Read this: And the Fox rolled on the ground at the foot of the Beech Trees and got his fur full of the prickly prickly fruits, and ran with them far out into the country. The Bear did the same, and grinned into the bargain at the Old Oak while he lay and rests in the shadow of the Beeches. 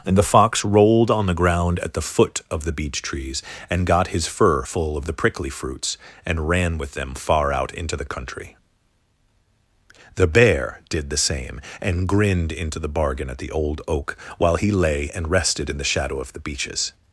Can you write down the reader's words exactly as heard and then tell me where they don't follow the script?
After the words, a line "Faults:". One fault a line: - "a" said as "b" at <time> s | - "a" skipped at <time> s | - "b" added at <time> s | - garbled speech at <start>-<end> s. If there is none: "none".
And the Fox rolled on the ground at the foot of the Beech Trees and got his fur full of the prickly fruits, and ran with them far out into the country. The Bear did the same, and grinned into the bargain at the Old Oak while he lay and rested in the shadow of the Beeches.
Faults:
- "prickly" skipped at 5.5 s
- "rests" said as "rested" at 15.3 s